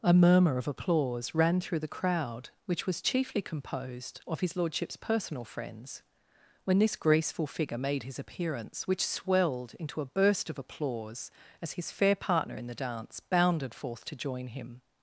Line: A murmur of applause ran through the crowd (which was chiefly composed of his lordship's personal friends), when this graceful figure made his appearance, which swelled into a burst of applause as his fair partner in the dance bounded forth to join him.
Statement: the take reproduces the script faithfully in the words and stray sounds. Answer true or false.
true